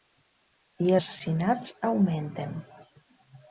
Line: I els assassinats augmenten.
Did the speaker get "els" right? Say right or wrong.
wrong